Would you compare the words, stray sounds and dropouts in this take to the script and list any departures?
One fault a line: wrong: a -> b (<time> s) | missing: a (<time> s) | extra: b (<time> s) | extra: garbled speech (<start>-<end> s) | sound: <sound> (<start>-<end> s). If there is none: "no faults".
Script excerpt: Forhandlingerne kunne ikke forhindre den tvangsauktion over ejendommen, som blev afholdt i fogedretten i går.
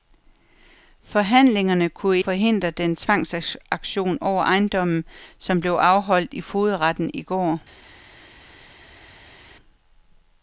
missing: ikke (2.2 s)